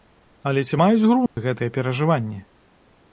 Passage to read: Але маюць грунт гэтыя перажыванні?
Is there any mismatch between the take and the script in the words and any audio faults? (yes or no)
yes